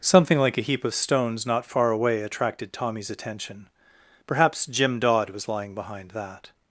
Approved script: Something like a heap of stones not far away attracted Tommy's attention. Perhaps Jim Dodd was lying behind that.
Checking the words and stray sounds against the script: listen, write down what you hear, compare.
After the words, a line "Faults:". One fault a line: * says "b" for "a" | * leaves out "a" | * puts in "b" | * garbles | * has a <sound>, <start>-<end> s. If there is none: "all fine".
Something like a heap of stones not far away attracted Tommy's attention. Perhaps Jim Dodd was lying behind that.
Faults:
all fine